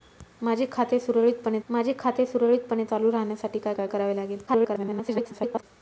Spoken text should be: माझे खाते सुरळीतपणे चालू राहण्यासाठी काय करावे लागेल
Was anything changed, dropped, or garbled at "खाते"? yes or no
no